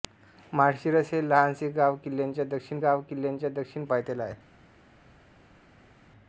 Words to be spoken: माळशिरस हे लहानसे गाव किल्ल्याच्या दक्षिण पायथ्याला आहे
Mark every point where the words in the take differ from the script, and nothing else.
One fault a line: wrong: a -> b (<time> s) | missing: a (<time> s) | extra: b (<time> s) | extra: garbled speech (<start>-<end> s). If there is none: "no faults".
extra: गाव किल्ल्याच्या दक्षिण (2.8 s)